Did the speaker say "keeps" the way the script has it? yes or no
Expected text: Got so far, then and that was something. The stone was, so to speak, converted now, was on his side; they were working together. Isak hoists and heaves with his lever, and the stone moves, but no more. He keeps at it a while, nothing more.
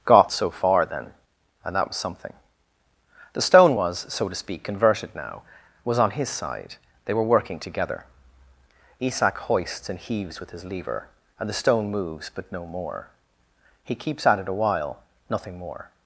yes